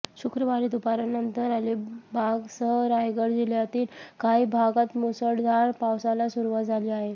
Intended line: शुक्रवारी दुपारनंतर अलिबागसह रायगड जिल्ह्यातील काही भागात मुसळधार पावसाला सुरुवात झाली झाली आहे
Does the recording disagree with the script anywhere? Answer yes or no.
yes